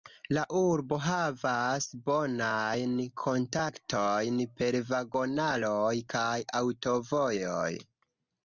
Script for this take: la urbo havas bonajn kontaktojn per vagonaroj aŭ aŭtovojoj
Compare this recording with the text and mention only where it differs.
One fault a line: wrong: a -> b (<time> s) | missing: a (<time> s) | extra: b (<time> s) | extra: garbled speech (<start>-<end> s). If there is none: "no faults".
wrong: aŭ -> kaj (6.2 s)